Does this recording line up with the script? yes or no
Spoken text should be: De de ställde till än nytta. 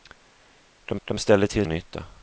yes